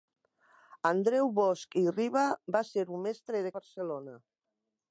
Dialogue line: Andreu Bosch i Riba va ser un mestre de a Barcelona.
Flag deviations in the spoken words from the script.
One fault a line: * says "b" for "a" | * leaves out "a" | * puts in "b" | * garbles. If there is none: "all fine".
all fine